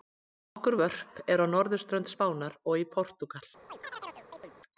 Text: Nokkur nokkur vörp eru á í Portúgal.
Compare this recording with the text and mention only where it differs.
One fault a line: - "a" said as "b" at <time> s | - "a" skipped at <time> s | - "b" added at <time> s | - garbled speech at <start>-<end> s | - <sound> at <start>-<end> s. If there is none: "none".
- "nokkur" skipped at 0.8 s
- "norðurströnd Spánar og" added at 1.6 s
- chirp at 3.7-4.5 s